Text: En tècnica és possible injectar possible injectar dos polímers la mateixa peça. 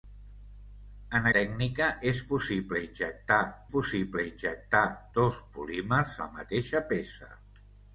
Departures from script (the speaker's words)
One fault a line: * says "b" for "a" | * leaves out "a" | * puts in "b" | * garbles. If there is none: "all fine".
all fine